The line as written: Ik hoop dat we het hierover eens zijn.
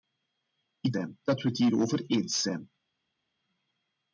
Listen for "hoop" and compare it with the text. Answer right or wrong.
wrong